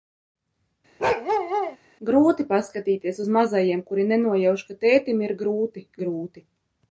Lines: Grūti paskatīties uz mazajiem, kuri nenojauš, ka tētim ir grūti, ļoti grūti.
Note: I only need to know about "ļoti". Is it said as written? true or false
false